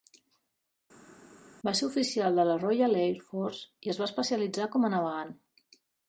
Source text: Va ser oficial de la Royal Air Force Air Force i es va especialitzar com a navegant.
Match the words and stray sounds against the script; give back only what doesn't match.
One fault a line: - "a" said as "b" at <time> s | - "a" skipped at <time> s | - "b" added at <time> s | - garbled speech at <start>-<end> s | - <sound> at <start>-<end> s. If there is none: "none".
- "Air Force" skipped at 3.9 s